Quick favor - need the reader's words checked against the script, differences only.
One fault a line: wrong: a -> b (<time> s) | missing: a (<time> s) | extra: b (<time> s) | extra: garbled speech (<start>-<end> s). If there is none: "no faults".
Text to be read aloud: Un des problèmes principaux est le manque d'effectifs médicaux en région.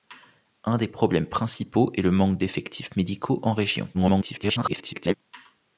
extra: garbled speech (3.9-5.1 s)